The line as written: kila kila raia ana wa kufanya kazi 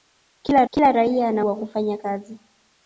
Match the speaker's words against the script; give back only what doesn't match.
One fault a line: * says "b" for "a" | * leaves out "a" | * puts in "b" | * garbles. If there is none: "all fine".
all fine